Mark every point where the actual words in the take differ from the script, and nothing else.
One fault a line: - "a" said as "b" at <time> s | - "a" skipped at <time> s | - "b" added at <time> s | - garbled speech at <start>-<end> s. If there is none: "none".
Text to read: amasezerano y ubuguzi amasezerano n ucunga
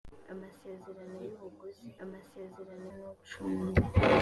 none